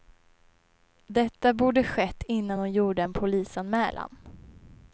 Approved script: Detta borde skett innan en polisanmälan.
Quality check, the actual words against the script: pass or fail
fail